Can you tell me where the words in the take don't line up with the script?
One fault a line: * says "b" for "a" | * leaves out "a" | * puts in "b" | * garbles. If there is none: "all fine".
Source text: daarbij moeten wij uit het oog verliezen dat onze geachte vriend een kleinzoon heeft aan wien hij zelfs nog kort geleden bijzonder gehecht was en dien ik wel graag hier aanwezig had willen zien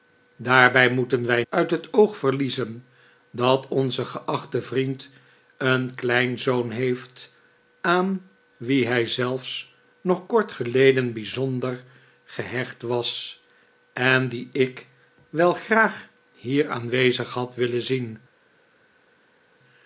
all fine